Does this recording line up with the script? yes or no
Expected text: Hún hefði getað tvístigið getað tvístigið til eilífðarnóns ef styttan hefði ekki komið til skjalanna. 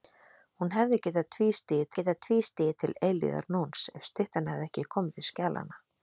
yes